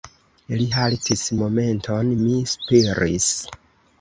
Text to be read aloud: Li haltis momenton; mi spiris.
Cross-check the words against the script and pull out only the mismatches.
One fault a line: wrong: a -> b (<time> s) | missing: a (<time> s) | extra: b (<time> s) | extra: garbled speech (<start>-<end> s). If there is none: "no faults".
no faults